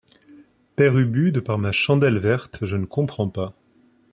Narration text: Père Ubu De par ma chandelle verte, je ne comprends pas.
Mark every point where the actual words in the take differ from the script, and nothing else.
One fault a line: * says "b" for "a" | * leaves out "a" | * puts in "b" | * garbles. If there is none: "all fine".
all fine